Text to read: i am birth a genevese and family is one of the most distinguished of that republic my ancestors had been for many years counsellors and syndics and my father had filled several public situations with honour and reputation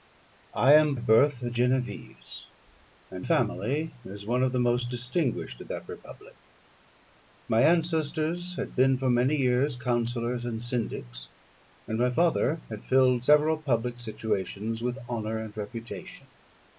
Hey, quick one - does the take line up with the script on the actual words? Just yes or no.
yes